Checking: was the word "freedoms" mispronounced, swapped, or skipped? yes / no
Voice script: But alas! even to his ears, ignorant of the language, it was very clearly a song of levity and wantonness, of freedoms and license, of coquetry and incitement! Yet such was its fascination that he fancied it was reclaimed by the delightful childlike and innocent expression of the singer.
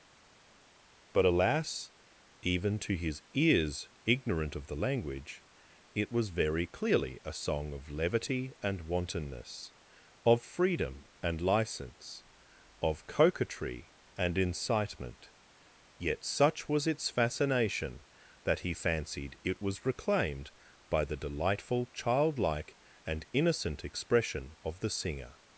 yes